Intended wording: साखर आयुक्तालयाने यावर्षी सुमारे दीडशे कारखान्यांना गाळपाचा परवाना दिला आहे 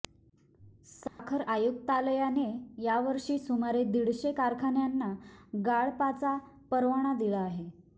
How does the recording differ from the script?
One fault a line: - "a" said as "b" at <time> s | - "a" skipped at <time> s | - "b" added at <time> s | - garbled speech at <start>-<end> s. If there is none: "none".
none